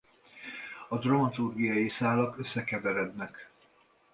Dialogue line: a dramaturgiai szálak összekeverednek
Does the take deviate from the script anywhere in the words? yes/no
no